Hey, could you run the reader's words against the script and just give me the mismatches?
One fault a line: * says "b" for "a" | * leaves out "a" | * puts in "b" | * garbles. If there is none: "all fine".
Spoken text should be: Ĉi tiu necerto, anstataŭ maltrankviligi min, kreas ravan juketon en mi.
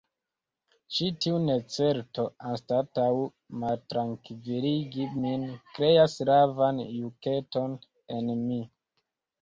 all fine